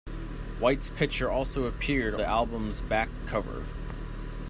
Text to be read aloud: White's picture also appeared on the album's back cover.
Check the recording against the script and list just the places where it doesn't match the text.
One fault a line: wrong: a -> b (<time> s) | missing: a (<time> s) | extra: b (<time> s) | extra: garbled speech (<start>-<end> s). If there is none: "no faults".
missing: on (2.1 s)